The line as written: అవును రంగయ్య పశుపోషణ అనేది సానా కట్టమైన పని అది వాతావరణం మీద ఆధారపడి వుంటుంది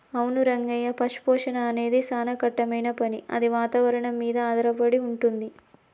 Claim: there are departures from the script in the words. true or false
false